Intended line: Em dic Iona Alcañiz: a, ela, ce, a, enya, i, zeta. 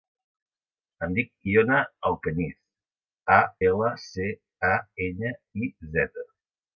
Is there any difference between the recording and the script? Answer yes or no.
no